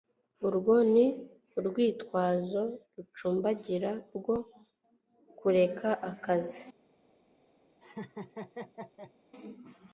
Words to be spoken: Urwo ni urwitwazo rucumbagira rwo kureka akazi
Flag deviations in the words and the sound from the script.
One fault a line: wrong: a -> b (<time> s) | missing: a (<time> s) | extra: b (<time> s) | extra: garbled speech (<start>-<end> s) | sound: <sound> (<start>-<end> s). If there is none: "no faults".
sound: laugh (7.8-9.1 s)